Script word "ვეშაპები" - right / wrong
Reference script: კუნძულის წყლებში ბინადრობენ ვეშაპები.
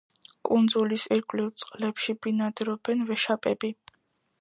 right